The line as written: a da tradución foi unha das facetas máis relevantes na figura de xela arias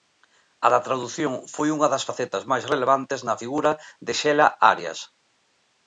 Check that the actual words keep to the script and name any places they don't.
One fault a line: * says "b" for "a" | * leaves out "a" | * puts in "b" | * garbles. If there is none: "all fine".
all fine